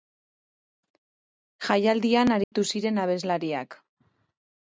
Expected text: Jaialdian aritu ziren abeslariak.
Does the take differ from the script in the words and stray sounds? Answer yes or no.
yes